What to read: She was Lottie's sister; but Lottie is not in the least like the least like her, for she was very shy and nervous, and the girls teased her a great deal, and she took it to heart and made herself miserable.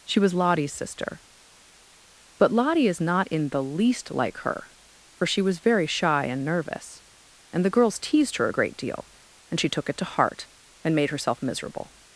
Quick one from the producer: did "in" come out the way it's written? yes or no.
yes